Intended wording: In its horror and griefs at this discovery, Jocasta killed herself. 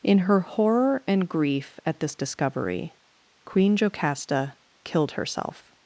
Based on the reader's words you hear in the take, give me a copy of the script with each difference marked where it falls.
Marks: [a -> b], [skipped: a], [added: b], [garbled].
In [its -> her] horror and [griefs -> grief] at this discovery, [added: Queen] Jocasta killed herself.